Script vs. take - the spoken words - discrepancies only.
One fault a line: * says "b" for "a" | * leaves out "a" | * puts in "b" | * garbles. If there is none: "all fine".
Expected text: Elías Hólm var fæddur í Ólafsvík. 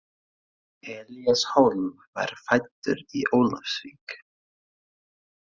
all fine